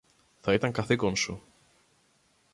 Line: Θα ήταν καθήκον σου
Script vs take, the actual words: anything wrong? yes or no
no